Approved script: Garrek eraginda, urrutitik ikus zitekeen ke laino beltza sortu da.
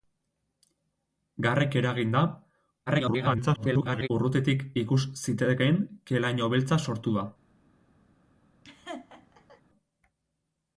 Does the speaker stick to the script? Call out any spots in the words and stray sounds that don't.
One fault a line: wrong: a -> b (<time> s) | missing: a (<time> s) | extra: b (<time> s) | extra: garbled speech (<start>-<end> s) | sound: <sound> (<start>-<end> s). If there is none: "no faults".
extra: garbled speech (2.9-4.1 s)
sound: laugh (8.6-9.6 s)